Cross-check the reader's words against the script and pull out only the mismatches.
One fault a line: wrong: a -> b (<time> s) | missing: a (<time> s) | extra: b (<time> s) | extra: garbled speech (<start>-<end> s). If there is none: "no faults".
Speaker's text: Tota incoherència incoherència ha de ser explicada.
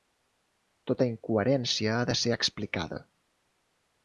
missing: incoherència (1.9 s)